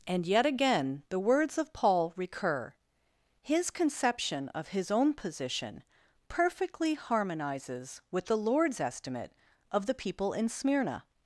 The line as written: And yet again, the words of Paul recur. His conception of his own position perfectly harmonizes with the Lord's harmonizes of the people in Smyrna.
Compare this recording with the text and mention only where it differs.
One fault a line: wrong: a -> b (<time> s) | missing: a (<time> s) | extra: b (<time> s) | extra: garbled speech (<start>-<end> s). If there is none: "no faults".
wrong: harmonizes -> estimate (8.8 s)